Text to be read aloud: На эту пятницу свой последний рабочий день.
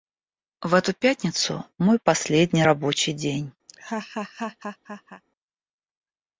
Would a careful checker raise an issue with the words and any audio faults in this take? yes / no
yes